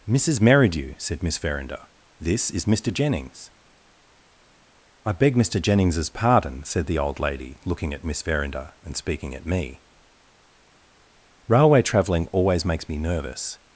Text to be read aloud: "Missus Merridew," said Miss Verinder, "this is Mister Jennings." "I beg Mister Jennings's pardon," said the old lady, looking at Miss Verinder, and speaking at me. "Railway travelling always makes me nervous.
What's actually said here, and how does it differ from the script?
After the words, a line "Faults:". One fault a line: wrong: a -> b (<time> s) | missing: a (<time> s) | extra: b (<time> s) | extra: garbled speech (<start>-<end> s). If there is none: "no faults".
"Missus Merridew," said Miss Verinder, "this is Mister Jennings." "I beg Mister Jennings's pardon," said the old lady, looking at Miss Verinder, and speaking at me. "Railway travelling always makes me nervous.
Faults:
no faults